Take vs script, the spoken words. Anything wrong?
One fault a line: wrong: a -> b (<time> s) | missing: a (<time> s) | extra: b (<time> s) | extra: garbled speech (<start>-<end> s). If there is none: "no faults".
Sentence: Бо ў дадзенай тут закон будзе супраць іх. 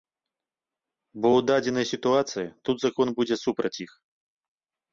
extra: сітуацыі (1.9 s)